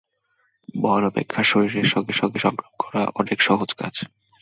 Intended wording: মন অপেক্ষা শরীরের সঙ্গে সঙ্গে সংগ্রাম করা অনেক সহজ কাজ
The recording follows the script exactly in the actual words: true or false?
true